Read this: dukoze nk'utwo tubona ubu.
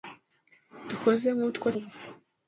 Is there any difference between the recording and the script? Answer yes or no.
yes